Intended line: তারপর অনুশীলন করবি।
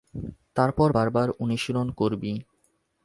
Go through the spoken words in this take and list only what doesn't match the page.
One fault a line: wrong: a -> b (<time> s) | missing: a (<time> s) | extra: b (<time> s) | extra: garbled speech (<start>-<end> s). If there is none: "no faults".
extra: বারবার (0.9 s)